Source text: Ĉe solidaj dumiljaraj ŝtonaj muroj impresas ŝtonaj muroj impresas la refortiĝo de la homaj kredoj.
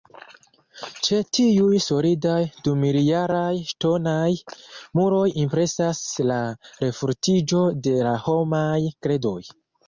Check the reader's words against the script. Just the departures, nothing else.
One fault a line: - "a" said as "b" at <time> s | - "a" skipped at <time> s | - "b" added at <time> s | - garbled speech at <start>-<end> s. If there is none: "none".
- "tiuj" added at 1.4 s
- "ŝtonaj muroj impresas" skipped at 6.0 s